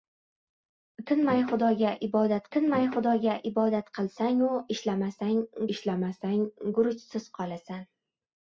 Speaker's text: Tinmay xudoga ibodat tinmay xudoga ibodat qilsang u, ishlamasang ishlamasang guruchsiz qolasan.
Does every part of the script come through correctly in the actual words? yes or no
yes